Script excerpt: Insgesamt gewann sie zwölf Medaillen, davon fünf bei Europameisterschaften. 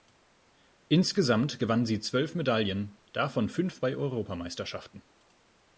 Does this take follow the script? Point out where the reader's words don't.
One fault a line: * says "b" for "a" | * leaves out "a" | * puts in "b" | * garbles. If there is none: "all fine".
all fine